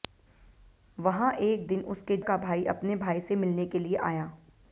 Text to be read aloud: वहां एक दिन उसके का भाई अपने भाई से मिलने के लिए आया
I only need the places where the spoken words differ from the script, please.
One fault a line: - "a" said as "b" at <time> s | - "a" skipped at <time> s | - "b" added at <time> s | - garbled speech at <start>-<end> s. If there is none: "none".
none